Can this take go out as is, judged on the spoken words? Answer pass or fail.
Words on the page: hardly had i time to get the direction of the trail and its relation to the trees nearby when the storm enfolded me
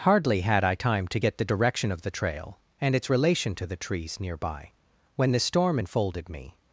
pass